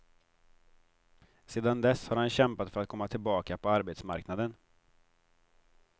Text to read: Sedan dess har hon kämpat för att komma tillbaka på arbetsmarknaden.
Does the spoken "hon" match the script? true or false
false